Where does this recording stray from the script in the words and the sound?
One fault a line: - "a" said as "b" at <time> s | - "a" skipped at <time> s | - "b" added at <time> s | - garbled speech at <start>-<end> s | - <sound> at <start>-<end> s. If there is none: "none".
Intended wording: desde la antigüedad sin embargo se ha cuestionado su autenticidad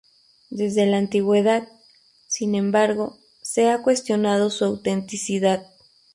none